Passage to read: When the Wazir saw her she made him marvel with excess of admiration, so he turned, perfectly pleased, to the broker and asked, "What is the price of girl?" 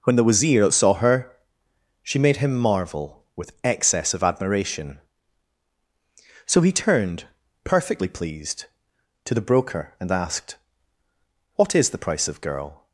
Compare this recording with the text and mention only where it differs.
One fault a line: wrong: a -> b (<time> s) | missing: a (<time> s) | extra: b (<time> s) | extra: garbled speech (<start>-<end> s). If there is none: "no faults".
no faults